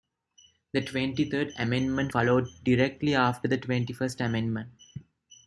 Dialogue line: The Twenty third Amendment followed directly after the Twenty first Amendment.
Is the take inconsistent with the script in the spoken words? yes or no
no